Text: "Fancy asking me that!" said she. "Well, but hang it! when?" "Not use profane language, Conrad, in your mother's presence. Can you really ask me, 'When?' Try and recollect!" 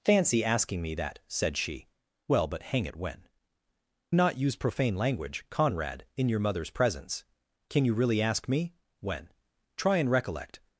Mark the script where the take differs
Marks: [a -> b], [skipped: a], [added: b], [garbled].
"Fancy asking me that!" said she. "Well, but hang it! when?" "Not use profane language, Conrad, in your mother's presence. Can you really ask me, 'When?' Try and recollect!"